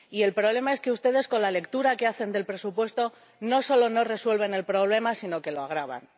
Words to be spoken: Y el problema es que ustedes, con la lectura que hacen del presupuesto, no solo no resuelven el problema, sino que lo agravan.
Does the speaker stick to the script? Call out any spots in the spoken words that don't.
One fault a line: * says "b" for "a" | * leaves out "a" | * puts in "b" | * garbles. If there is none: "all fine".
all fine